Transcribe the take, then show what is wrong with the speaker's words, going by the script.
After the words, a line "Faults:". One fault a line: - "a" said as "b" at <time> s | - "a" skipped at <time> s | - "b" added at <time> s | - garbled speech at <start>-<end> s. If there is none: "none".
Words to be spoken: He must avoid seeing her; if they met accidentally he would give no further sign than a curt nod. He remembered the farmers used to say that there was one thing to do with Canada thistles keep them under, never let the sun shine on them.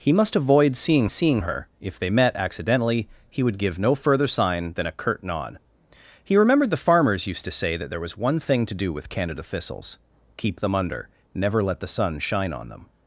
He must avoid seeing seeing her; if they met accidentally he would give no further sign than a curt nod. He remembered the farmers used to say that there was one thing to do with Canada thistles keep them under, never let the sun shine on them.
Faults:
- "seeing" added at 1.1 s